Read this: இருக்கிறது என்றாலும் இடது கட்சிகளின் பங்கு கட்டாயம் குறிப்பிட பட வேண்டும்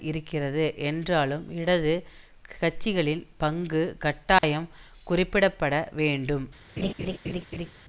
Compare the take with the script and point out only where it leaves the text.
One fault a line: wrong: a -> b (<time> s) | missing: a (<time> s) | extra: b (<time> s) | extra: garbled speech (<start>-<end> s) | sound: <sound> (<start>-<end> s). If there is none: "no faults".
sound: dropout (4.4-4.4 s)
sound: laugh (6.8-7.7 s)